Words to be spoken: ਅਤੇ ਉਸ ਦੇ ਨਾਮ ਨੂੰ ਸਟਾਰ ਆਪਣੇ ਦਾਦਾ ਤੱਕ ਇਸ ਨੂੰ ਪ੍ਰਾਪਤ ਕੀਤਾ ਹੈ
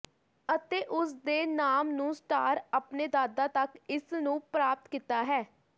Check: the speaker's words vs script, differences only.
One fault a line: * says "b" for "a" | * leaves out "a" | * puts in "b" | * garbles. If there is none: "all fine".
all fine